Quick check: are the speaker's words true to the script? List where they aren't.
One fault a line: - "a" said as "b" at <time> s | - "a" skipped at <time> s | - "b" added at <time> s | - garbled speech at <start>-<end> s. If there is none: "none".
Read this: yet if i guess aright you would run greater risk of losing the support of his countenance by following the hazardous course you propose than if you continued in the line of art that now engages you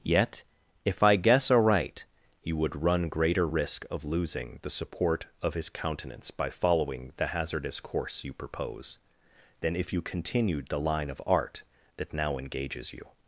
- "in" skipped at 10.7 s